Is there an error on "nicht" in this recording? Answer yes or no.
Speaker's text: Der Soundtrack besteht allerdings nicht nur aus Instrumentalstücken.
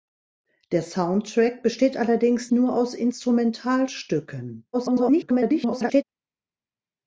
yes